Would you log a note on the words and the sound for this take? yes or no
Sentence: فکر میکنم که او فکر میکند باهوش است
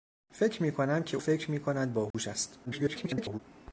yes